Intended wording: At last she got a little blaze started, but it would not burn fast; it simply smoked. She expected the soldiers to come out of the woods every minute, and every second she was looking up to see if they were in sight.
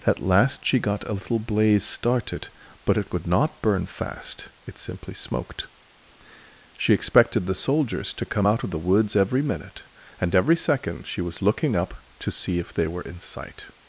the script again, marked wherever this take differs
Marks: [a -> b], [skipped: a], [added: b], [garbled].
At last she got a little blaze started, but it would not burn fast; it simply smoked. She expected the soldiers to come out of the woods every minute, and every second she was looking up to see if they were in sight.